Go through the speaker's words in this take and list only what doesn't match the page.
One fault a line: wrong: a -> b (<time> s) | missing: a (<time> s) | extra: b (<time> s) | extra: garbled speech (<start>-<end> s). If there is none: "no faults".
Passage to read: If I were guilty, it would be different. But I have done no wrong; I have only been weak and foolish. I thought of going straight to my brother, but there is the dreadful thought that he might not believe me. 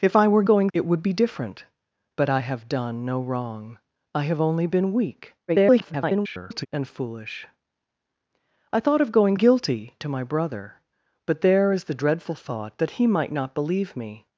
wrong: guilty -> going (0.4 s)
extra: garbled speech (5.5-6.7 s)
wrong: straight -> guilty (9.3 s)